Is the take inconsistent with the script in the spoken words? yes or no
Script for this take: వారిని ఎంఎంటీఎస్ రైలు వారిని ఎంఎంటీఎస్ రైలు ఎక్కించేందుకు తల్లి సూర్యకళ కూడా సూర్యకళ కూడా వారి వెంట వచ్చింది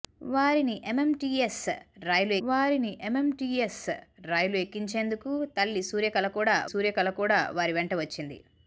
no